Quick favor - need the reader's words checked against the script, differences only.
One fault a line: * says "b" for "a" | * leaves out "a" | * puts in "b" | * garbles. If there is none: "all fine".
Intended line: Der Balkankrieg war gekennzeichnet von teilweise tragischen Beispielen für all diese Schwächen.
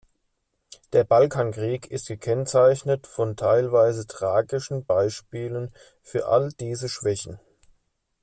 * says "ist" for "war"